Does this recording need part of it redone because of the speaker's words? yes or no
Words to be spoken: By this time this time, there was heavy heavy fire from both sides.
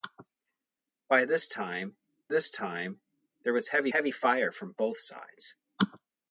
no